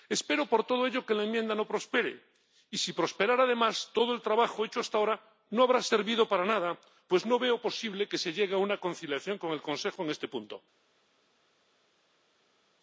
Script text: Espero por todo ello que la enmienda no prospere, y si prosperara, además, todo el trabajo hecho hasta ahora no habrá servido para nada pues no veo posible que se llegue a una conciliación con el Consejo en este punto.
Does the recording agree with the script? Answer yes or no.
yes